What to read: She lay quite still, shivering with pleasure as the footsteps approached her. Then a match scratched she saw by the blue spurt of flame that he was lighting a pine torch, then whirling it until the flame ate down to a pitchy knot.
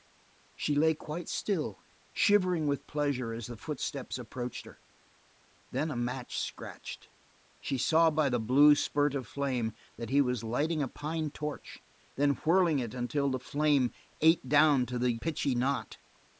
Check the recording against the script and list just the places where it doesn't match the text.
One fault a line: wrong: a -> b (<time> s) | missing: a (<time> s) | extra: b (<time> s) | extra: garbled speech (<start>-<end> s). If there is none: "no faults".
wrong: a -> the (15.0 s)